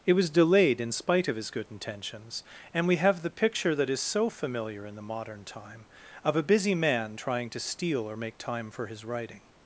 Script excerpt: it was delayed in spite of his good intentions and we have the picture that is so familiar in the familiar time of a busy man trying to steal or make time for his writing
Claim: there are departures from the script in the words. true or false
true